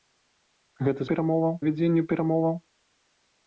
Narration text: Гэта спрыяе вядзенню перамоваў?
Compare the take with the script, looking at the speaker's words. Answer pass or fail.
fail